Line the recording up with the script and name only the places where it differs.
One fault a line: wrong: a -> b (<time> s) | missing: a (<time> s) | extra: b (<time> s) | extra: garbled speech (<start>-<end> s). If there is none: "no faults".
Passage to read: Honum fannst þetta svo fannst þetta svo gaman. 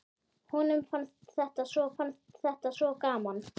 no faults